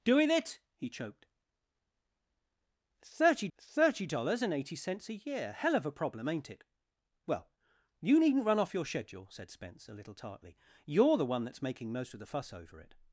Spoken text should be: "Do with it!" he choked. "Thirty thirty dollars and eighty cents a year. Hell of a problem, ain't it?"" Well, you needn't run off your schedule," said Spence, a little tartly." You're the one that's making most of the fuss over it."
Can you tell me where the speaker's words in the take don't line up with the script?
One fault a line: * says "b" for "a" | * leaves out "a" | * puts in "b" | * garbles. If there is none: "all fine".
all fine